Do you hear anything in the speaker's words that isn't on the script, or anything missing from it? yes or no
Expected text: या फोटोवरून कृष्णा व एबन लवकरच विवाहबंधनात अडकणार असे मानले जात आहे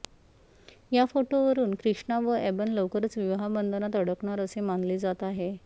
no